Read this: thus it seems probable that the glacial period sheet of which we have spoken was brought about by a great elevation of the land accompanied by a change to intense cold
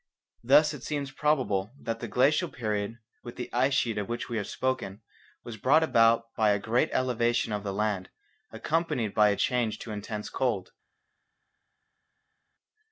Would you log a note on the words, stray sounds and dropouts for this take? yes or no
yes